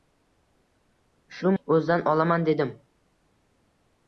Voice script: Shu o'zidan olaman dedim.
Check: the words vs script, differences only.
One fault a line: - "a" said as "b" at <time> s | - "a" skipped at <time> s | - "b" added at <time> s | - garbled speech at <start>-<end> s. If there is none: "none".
none